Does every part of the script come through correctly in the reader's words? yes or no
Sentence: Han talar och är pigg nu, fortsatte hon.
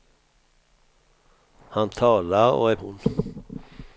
no